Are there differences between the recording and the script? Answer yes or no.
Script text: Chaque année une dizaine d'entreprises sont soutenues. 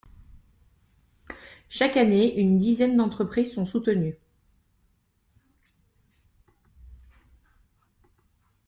no